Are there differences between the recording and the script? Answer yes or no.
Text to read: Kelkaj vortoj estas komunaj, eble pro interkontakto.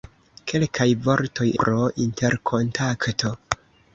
yes